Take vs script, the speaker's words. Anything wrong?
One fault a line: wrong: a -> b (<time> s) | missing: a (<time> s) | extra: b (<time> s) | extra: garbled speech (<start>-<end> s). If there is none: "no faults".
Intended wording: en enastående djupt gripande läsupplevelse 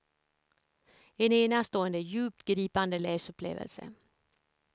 no faults